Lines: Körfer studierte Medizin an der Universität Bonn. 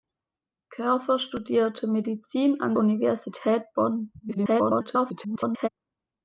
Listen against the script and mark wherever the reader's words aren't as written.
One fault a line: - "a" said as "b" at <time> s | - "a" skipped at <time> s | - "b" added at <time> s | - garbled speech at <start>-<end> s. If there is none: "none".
- "der" skipped at 2.7 s
- garbled speech at 4.2-5.7 s